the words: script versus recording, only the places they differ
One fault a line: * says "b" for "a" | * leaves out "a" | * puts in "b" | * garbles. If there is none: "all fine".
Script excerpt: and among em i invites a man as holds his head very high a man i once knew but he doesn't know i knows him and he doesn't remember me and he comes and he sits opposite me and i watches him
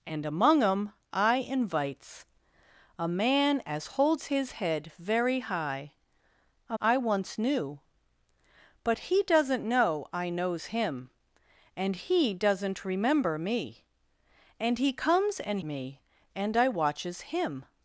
* leaves out "man"
* leaves out "he sits opposite"